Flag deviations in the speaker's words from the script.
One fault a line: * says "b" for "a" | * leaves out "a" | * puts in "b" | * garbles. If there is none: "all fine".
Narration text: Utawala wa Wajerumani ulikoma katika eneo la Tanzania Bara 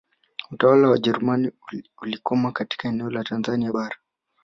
all fine